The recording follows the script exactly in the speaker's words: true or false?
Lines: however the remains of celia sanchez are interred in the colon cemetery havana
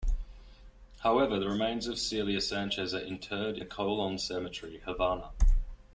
false